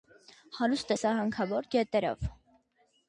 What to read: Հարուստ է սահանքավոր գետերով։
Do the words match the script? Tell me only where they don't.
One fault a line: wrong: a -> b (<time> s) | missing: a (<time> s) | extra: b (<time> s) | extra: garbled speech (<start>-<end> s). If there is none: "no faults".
no faults